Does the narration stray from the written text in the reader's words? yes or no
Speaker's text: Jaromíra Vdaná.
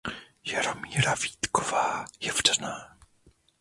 yes